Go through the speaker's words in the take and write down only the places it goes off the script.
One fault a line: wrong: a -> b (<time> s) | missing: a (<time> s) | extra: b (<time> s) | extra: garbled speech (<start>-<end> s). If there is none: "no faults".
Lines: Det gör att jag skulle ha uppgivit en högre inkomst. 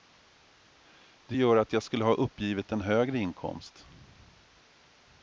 no faults